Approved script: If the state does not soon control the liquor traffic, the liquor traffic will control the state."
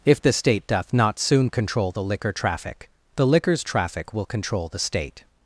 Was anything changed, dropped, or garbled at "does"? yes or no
yes